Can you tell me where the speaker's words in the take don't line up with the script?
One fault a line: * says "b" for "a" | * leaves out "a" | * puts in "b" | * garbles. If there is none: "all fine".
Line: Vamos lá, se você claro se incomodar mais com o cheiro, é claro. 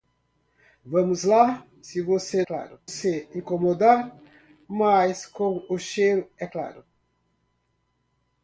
all fine